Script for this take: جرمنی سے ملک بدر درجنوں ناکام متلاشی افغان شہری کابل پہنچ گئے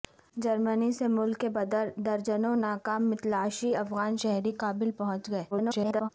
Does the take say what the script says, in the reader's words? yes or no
no